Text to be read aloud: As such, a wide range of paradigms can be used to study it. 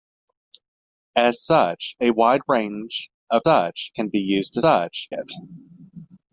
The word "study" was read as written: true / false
false